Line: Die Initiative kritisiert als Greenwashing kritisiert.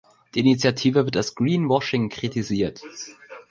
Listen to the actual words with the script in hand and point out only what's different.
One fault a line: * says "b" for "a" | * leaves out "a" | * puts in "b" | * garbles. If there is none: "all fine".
* says "wird" for "kritisiert"